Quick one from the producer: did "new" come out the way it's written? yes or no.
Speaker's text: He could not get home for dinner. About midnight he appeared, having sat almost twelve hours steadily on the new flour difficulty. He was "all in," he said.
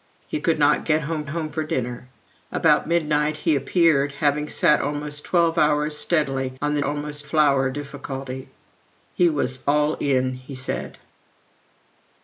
no